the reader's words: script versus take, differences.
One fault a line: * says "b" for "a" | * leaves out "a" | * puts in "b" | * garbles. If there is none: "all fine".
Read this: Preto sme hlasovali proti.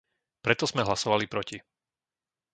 all fine